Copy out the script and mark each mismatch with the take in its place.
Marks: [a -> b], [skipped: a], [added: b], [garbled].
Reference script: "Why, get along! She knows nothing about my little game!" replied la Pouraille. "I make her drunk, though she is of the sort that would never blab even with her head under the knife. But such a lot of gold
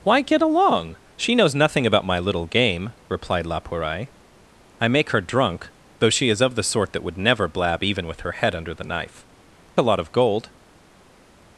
"Why, get along! She knows nothing about my little game!" replied la Pouraille. "I make her drunk, though she is of the sort that would never blab even with her head under the knife. [skipped: But such] a lot of gold